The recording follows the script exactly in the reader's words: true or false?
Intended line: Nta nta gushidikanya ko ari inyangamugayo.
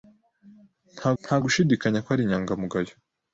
true